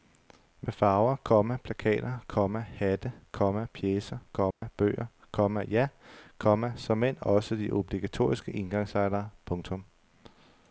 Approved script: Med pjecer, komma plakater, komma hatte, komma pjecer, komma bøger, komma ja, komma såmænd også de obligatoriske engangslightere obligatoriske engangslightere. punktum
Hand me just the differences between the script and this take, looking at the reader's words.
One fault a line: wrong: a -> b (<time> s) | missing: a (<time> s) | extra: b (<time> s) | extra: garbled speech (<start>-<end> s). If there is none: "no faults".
wrong: pjecer -> farver (0.7 s)
missing: obligatoriske engangslightere (9.3 s)